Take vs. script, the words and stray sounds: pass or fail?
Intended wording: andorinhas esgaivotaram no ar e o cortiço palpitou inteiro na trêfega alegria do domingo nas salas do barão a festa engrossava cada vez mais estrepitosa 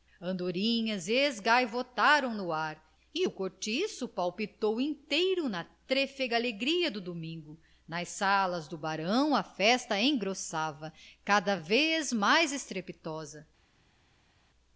pass